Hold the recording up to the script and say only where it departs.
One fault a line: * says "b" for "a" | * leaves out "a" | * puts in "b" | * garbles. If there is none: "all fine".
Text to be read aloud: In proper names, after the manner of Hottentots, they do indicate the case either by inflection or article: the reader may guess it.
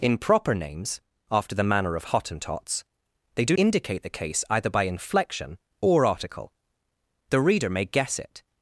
all fine